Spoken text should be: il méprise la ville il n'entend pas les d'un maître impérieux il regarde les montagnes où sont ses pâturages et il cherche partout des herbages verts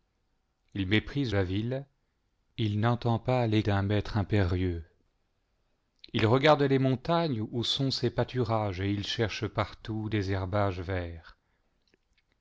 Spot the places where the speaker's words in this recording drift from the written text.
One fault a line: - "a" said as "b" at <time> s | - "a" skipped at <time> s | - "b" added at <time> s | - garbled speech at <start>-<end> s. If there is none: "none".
none